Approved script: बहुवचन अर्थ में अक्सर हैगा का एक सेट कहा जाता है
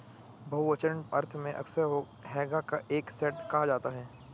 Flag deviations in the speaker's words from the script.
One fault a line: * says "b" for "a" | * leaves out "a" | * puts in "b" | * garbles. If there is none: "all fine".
all fine